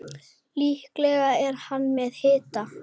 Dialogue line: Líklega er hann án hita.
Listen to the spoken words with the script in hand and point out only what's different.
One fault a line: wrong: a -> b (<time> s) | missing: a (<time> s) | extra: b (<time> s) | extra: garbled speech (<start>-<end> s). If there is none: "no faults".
wrong: án -> með (2.0 s)